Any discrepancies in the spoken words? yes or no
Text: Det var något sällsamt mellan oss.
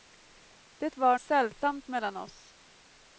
yes